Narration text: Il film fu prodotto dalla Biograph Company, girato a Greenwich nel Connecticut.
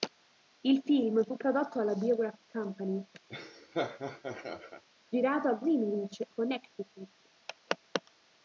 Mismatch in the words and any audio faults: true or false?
true